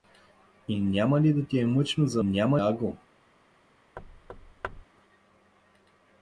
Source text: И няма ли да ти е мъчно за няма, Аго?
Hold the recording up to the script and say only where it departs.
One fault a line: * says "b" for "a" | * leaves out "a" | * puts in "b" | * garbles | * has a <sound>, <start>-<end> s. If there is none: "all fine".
* has a thud, 4.0-4.8 s